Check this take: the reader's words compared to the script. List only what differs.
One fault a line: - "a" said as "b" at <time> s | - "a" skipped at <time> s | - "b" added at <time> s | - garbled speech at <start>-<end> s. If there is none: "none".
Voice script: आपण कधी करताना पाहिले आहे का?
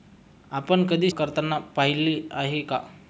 none